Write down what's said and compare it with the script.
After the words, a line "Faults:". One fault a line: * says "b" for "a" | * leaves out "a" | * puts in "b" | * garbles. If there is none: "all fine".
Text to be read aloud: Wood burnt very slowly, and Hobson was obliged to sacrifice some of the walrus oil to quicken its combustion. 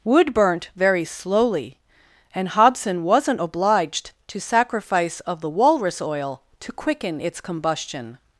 Wood burnt very slowly, and Hobson wasn't obliged to sacrifice of the walrus oil to quicken its combustion.
Faults:
* says "wasn't" for "was"
* leaves out "some"